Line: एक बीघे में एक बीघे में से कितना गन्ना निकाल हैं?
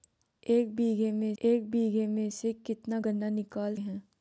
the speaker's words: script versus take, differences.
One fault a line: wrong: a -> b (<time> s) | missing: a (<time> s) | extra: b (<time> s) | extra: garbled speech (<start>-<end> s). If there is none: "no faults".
no faults